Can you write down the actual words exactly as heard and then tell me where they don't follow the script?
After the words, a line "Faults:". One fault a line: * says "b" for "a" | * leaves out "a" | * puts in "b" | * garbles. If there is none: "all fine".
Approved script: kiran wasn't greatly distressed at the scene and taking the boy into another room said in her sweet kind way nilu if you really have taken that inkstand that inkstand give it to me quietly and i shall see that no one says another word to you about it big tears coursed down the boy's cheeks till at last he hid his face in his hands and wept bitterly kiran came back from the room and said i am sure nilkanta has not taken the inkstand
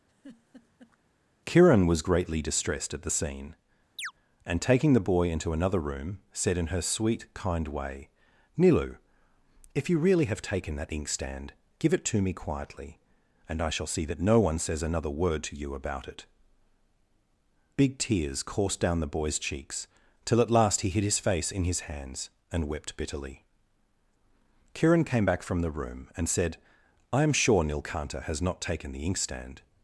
kiran was greatly distressed at the scene and taking the boy into another room said in her sweet kind way nilu if you really have taken that inkstand give it to me quietly and i shall see that no one says another word to you about it big tears coursed down the boy's cheeks till at last he hid his face in his hands and wept bitterly kiran came back from the room and said i am sure nilkanta has not taken the inkstand
Faults:
* says "was" for "wasn't"
* leaves out "that inkstand"